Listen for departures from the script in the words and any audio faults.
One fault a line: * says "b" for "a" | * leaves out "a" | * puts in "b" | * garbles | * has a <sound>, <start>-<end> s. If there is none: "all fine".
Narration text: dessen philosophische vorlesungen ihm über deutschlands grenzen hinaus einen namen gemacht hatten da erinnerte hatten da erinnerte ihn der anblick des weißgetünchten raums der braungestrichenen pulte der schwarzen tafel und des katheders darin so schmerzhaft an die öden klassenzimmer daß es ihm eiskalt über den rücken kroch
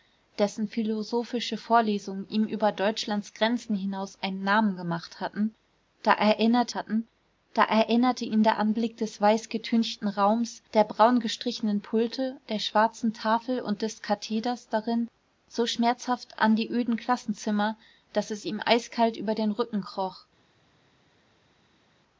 all fine